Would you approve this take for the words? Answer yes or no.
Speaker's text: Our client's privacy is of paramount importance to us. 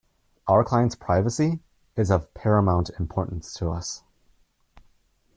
yes